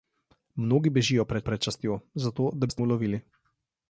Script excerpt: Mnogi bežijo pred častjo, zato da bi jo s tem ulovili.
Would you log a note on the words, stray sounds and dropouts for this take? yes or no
yes